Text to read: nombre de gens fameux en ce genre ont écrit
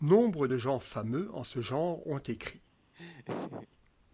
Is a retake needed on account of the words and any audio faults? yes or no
yes